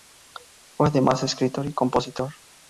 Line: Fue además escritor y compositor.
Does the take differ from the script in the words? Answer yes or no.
no